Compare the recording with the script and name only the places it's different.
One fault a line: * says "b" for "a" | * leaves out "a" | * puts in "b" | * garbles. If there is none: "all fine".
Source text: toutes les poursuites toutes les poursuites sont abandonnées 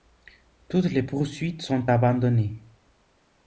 * leaves out "toutes les poursuites"